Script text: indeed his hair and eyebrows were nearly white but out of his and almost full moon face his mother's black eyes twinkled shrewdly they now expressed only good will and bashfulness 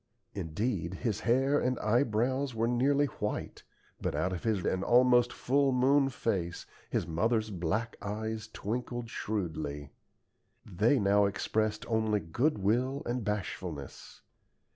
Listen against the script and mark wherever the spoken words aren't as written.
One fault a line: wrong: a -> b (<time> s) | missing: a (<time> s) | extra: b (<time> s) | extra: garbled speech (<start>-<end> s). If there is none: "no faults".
no faults